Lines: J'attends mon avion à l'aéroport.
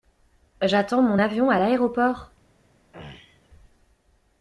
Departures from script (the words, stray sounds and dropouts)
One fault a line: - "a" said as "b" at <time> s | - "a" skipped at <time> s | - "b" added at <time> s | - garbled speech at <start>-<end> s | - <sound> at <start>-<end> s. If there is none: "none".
- throat clearing at 2.9-3.5 s